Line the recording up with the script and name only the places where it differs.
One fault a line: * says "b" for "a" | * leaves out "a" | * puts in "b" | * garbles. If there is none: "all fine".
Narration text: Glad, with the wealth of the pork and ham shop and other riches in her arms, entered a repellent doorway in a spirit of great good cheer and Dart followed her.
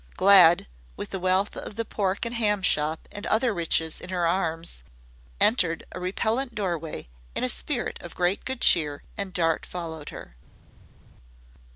all fine